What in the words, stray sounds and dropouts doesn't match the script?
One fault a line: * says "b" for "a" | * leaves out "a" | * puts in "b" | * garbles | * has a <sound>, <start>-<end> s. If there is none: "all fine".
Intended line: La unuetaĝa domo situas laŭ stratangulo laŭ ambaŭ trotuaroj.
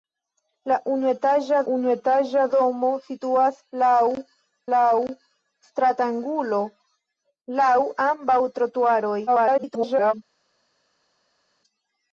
* puts in "unuetaĝa"
* puts in "laŭ"
* garbles